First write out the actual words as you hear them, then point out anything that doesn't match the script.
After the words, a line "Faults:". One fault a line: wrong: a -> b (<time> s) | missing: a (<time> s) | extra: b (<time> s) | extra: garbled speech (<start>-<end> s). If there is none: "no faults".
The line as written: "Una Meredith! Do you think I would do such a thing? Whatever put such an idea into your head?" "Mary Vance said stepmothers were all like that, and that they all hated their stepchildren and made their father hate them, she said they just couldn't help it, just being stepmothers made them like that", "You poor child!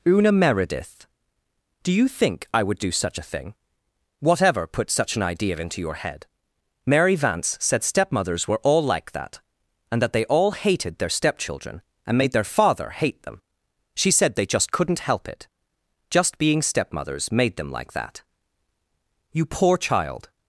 "Una Meredith! Do you think I would do such a thing? Whatever put such an idea into your head?" "Mary Vance said stepmothers were all like that, and that they all hated their stepchildren and made their father hate them, she said they just couldn't help it, just being stepmothers made them like that", "You poor child!
Faults:
no faults